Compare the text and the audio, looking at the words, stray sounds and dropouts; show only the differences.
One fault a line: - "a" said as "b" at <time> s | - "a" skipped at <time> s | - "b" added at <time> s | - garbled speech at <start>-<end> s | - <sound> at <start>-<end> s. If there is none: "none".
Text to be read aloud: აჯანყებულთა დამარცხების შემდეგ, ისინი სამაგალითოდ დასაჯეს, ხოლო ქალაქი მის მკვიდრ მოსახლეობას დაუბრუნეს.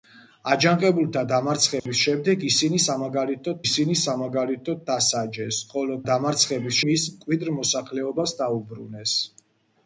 - dropout at 1.8-1.9 s
- "ისინი სამაგალითოდ" added at 3.6 s
- "ქალაქი" said as "დამარცხების" at 6.1 s